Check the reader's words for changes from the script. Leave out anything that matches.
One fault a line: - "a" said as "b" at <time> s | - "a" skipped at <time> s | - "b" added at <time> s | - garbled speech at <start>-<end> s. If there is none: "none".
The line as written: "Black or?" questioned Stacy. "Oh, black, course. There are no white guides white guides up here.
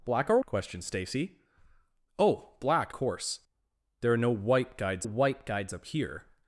none